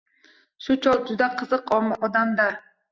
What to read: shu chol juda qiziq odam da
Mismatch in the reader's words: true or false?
false